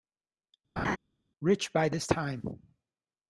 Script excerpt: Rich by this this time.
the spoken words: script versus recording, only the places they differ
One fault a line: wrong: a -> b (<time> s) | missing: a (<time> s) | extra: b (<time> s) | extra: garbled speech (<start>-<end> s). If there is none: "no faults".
missing: this (2.1 s)